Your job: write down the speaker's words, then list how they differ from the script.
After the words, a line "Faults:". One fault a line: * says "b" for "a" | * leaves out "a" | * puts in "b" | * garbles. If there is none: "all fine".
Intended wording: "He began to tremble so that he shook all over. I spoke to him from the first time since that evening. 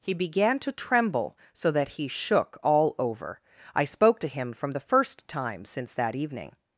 "He began to tremble so that he shook all over. I spoke to him from the first time since that evening.
Faults:
all fine